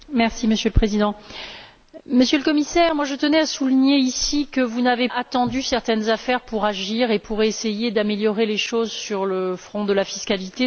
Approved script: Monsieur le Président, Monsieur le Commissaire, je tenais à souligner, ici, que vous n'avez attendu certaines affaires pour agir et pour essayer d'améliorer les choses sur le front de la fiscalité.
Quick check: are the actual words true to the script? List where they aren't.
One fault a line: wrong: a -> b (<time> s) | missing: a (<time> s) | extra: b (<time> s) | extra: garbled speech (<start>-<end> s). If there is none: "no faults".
no faults